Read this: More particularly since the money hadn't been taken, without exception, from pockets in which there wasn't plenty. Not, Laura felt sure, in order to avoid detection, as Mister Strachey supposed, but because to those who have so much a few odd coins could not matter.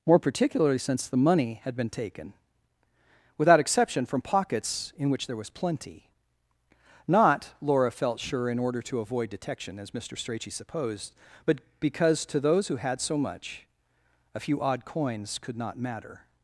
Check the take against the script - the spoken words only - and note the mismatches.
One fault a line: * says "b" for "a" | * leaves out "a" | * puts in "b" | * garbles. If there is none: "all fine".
* says "had" for "hadn't"
* says "was" for "wasn't"
* says "had" for "have"